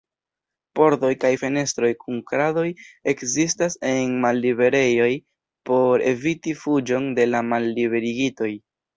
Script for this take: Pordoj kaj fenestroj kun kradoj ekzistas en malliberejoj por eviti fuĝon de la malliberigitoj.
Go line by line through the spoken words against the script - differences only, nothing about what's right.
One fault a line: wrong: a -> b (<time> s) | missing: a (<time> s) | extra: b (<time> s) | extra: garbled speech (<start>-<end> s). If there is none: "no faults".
no faults